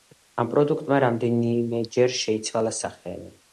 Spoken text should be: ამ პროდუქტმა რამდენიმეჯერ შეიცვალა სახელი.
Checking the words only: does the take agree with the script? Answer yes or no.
yes